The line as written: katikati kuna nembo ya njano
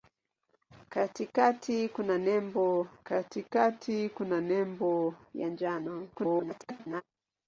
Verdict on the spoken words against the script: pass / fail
fail